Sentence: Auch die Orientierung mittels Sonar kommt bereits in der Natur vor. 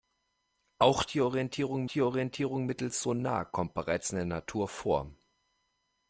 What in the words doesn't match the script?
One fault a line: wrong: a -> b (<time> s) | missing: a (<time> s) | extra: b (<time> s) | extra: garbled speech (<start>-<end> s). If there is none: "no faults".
extra: die Orientierung (1.8 s)